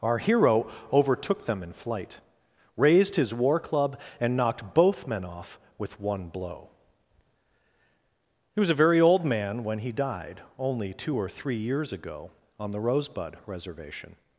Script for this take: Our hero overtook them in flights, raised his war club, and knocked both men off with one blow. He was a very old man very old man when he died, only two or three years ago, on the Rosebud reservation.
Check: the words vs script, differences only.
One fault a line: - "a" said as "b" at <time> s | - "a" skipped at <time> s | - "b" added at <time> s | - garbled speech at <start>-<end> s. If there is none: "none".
- "flights" said as "flight" at 1.7 s
- "very old man" skipped at 9.6 s